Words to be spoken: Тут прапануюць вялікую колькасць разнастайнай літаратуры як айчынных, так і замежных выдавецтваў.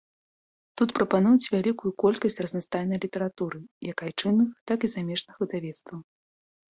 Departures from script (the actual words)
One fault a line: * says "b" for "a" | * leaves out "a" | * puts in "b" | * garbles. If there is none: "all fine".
all fine